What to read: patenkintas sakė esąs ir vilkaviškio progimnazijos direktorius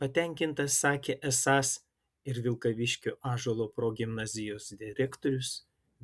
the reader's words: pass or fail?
fail